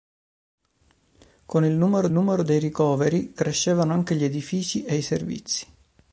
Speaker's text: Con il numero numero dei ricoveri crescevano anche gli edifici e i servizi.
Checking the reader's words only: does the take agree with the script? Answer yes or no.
yes